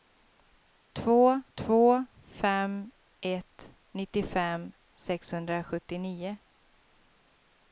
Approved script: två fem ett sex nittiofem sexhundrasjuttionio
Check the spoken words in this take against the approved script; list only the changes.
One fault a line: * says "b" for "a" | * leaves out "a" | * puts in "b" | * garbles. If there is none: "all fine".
* puts in "två"
* leaves out "sex"